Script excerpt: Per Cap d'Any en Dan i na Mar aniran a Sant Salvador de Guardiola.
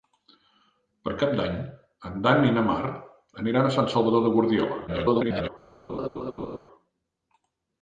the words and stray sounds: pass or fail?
fail